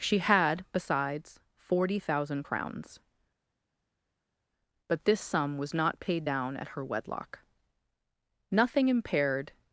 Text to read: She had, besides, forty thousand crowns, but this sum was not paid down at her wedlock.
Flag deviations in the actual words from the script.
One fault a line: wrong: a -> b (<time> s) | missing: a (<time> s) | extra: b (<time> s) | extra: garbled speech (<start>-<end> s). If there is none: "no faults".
extra: Nothing impaired (8.5 s)